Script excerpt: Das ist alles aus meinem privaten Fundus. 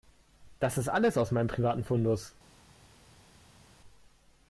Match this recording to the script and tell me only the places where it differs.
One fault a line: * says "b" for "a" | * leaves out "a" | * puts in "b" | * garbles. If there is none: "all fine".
all fine